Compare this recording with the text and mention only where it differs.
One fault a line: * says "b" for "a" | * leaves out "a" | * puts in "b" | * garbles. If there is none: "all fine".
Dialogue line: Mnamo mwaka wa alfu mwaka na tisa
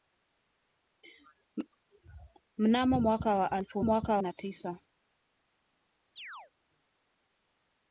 all fine